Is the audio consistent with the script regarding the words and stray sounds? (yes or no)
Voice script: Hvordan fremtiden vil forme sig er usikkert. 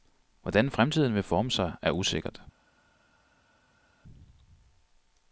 yes